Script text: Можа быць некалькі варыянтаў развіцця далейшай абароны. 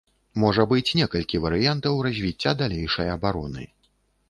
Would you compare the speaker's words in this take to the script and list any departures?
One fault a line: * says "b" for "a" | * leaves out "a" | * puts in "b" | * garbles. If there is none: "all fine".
all fine